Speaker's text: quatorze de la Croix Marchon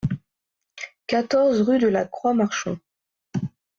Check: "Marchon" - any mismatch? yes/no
no